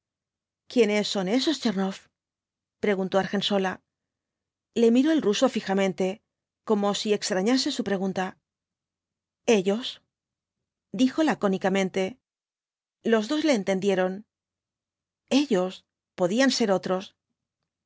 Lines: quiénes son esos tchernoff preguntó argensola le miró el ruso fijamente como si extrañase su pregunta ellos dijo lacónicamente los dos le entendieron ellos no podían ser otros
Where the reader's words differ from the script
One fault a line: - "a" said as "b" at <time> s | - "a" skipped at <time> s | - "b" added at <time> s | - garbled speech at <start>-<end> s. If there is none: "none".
- "no" skipped at 15.9 s